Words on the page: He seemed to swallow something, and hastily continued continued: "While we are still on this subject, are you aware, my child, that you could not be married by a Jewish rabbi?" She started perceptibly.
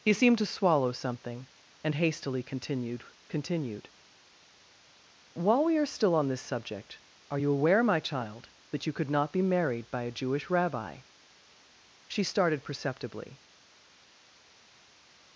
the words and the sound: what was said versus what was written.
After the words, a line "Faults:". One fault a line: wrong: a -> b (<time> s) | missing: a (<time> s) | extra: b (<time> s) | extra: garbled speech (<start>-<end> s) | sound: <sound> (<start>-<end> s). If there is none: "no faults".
He seemed to swallow something, and hastily continued continued: "While we are still on this subject, are you aware, my child, that you could not be married by a Jewish rabbi?" She started perceptibly.
Faults:
no faults